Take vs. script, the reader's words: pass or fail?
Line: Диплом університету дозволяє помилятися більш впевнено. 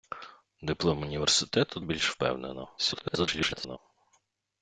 fail